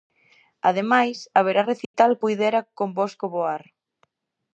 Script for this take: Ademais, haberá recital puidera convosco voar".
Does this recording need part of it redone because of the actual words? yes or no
no